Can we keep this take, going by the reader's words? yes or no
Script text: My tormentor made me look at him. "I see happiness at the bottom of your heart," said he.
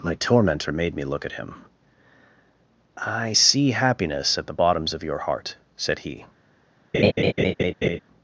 no